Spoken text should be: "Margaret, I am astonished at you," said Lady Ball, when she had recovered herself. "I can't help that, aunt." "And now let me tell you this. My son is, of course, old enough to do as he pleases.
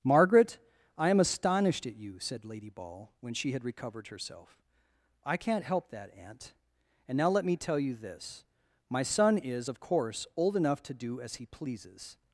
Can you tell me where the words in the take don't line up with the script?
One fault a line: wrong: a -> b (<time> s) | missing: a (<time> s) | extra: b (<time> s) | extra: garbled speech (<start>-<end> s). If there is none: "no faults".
no faults